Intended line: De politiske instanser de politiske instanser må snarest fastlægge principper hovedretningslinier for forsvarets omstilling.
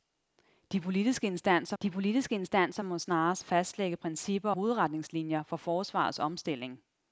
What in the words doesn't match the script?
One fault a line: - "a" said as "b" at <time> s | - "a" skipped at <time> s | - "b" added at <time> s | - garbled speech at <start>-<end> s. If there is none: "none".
none